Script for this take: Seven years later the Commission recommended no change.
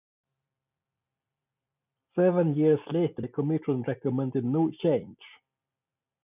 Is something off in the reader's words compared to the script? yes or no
no